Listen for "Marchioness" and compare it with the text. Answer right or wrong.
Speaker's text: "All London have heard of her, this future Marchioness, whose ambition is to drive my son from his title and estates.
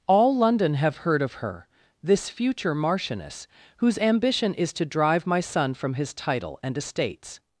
right